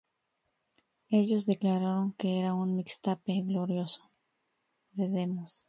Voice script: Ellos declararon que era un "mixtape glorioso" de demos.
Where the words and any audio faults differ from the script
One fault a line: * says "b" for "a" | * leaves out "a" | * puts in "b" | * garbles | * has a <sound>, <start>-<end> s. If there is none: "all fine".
all fine